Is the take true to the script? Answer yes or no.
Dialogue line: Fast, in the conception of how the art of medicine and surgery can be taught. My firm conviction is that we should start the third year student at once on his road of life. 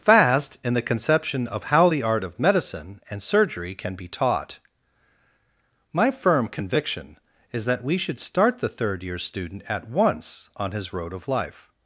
yes